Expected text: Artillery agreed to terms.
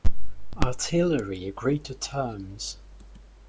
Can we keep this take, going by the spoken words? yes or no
yes